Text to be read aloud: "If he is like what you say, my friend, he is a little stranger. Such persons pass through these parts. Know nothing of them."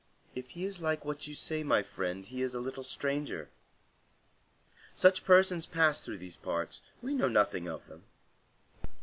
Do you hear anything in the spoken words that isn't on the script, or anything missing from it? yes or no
yes